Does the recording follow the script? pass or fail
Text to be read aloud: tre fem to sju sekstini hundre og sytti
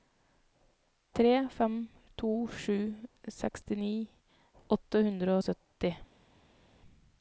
fail